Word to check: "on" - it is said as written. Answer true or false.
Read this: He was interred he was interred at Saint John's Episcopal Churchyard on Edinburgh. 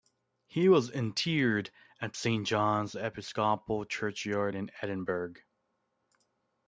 false